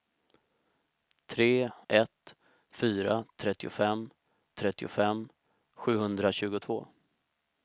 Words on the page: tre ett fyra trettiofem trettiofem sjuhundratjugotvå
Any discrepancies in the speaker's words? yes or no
no